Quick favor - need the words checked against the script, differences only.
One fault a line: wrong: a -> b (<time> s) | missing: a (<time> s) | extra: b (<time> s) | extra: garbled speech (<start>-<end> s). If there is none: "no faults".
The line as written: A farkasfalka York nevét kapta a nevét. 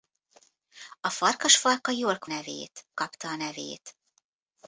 no faults